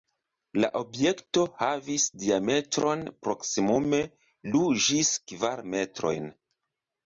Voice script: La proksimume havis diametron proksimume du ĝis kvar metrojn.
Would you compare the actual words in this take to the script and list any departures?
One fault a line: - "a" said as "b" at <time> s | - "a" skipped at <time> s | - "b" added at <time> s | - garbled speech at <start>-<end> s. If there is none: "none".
- "proksimume" said as "objekto" at 0.8 s